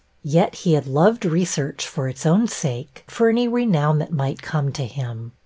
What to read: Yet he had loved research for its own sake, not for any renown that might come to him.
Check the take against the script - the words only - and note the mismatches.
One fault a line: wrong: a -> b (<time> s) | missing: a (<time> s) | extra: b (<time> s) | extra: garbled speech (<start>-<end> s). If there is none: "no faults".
missing: not (3.0 s)